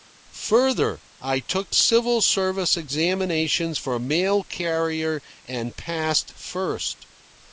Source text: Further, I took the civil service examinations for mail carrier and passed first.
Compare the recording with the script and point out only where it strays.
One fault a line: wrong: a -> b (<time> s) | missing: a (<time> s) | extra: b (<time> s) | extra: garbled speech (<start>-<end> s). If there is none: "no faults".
missing: the (1.7 s)